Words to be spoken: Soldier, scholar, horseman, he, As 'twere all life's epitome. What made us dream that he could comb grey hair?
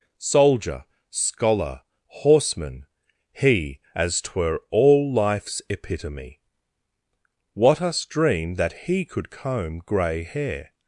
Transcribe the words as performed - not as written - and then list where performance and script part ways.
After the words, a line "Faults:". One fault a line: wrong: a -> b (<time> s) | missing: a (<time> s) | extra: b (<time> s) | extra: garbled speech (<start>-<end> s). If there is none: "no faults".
Soldier, scholar, horseman, he, As 'twere all life's epitome. What us dream that he could comb grey hair?
Faults:
missing: made (7.8 s)